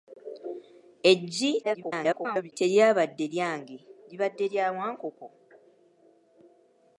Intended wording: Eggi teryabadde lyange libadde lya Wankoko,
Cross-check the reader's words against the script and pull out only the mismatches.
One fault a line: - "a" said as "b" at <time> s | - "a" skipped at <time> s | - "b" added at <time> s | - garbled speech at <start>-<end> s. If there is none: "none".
- garbled speech at 1.6-2.5 s